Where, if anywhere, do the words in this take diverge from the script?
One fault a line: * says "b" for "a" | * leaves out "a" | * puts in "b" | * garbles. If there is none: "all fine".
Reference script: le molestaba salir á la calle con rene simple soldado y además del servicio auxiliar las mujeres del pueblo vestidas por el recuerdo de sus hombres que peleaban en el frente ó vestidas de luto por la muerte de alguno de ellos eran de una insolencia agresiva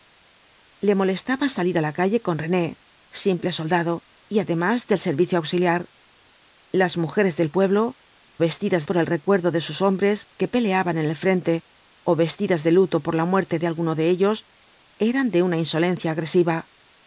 all fine